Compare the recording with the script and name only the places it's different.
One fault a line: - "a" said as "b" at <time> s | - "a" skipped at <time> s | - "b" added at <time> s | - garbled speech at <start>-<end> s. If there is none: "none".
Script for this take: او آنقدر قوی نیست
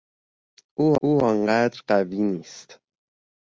- "او" added at 1.0 s